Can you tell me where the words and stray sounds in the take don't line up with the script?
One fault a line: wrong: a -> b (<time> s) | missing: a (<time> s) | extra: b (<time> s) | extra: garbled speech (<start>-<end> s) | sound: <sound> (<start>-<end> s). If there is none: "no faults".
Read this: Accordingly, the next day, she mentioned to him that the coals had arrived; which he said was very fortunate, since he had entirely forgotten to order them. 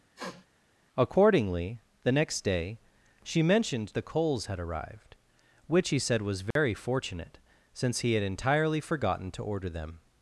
sound: sniff (0.2-0.5 s)
missing: to him that (4.0 s)
sound: dropout (6.5-6.6 s)